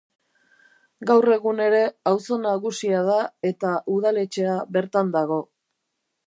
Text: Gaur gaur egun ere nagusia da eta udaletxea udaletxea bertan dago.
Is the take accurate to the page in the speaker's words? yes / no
no